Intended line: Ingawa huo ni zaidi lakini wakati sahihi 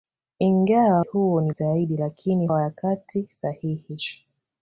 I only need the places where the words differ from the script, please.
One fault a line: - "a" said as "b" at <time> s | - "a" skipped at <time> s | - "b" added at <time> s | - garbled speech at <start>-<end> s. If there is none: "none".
none